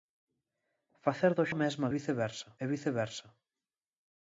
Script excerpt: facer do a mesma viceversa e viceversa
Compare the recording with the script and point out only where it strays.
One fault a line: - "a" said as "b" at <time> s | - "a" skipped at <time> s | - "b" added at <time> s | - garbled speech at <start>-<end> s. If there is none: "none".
none